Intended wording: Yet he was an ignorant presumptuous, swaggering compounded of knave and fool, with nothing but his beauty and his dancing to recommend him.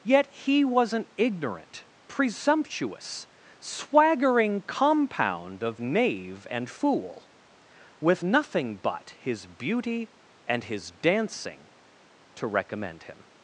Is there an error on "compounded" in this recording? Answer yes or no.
yes